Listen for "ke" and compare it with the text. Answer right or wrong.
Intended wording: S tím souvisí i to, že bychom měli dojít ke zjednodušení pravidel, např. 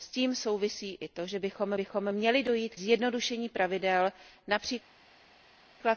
wrong